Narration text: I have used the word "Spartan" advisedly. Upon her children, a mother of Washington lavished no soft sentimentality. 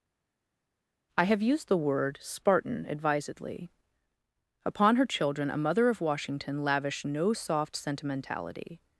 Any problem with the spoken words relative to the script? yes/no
no